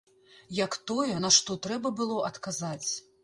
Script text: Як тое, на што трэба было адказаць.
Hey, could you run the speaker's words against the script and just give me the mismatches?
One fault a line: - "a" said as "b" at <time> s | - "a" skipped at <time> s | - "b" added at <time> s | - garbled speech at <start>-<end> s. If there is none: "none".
none